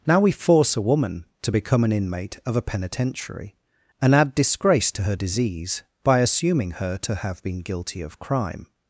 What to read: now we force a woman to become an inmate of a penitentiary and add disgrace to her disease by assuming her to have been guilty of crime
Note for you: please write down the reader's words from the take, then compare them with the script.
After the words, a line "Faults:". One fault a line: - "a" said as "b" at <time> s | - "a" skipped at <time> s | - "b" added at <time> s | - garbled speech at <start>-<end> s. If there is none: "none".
now we force a woman to become an inmate of a penitentiary and add disgrace to her disease by assuming her to have been guilty of crime
Faults:
none